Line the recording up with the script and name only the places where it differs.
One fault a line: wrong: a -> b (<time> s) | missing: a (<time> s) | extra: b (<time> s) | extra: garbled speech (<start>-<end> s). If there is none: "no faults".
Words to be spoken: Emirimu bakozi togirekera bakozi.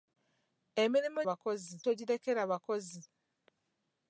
no faults